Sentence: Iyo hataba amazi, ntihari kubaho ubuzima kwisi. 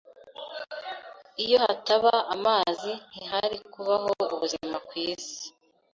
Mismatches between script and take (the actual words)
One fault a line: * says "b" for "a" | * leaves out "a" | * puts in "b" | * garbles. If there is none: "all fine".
all fine